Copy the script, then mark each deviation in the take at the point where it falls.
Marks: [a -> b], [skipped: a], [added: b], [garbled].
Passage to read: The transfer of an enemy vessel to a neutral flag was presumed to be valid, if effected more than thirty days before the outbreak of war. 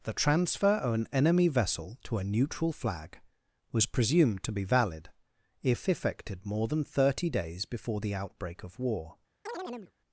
The transfer of an enemy vessel to a neutral flag was presumed to be valid, if effected more than thirty days before the outbreak of war.